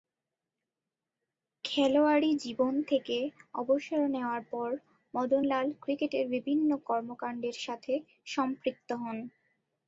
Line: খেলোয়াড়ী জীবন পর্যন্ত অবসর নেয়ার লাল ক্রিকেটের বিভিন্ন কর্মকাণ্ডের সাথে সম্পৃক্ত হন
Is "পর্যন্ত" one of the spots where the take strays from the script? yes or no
yes